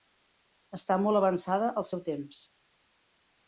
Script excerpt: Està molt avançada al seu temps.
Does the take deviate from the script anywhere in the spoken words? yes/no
no